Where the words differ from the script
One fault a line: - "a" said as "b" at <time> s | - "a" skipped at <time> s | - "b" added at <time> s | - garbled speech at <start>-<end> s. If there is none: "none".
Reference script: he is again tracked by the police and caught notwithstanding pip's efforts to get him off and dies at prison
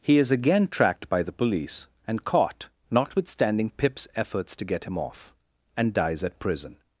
none